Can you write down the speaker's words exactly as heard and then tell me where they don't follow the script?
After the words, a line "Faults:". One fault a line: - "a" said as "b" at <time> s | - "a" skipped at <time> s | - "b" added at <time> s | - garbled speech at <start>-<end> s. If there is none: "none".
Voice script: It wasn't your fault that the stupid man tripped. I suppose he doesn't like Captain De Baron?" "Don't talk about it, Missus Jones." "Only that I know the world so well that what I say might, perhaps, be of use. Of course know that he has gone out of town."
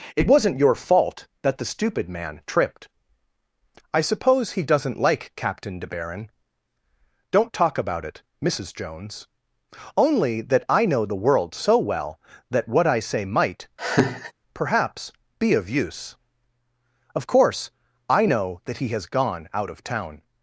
It wasn't your fault that the stupid man tripped. I suppose he doesn't like Captain De Baron?" "Don't talk about it, Missus Jones." "Only that I know the world so well that what I say might, perhaps, be of use. Of course I know that he has gone out of town."
Faults:
- "I" added at 18.1 s